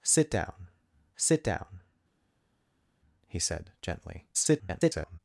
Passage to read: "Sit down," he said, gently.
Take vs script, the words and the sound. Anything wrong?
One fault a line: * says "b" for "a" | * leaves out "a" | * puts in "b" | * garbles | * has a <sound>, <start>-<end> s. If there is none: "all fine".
* puts in "sit down"
* garbles